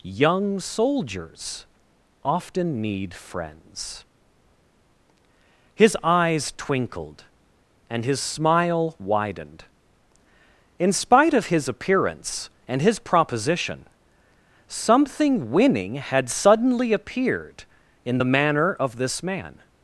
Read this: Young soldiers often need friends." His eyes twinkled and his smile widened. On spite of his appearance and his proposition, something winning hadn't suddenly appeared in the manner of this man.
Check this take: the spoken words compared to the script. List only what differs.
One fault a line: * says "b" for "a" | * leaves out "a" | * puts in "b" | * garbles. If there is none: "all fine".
* says "In" for "On"
* says "had" for "hadn't"